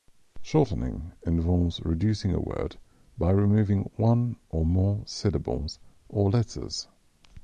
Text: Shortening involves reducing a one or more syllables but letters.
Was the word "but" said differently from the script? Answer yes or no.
yes